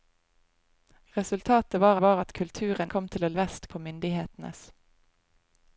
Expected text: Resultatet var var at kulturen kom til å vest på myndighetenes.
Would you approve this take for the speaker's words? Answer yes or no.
yes